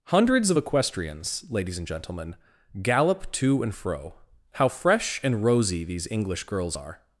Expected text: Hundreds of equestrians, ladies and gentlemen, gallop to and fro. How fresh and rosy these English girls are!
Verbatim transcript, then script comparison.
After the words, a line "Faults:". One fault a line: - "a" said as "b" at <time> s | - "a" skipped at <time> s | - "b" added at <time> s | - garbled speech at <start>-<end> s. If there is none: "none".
Hundreds of equestrians, ladies and gentlemen, gallop to and fro. How fresh and rosy these English girls are!
Faults:
none